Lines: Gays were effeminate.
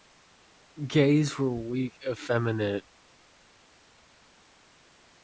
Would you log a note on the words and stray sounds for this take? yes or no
yes